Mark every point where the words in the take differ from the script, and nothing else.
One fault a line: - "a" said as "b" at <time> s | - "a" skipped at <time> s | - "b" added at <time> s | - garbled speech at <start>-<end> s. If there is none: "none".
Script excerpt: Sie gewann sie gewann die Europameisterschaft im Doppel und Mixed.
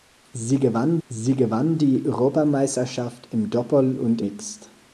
none